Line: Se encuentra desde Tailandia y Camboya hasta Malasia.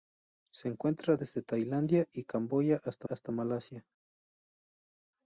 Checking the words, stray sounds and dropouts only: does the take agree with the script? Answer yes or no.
no